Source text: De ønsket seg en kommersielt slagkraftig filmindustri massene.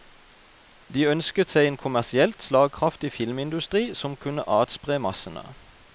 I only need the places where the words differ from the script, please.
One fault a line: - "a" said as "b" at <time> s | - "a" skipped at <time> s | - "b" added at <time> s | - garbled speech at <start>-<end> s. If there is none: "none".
- "som kunne atspre" added at 3.9 s